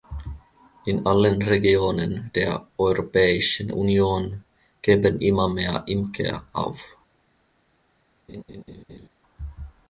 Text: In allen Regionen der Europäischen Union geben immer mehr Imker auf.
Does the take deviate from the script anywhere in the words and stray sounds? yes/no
yes